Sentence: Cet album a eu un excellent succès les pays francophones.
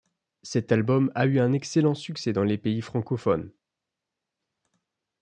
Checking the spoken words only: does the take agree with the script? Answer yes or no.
no